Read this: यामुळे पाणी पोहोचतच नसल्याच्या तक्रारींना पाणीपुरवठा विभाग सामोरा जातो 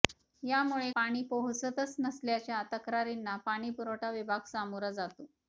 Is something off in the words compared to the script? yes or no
no